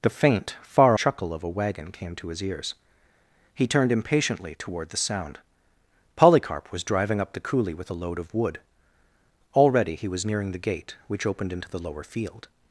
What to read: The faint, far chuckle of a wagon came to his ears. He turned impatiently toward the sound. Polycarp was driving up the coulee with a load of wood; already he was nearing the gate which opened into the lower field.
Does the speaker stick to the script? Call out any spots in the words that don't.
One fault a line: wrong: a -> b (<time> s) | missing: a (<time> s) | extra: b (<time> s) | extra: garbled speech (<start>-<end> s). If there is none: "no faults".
no faults